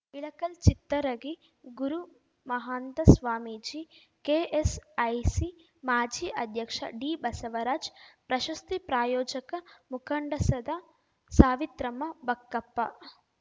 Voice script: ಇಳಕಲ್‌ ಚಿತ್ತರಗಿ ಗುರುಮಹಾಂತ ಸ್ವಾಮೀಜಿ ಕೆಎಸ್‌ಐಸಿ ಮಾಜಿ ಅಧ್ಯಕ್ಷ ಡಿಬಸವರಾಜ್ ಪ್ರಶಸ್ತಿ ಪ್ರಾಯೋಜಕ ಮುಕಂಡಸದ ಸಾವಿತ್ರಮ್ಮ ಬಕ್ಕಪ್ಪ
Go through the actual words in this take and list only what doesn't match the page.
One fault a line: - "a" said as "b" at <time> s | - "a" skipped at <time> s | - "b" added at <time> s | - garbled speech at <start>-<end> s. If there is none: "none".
none